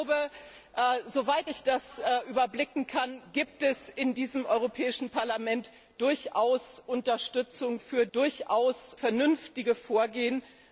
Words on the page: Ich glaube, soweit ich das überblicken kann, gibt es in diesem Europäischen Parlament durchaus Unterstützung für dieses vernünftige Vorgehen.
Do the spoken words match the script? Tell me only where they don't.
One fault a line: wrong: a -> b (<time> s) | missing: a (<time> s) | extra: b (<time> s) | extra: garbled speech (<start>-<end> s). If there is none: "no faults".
wrong: dieses -> durchaus (8.1 s)